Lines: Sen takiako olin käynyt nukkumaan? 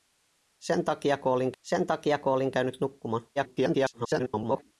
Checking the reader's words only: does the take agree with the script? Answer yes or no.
no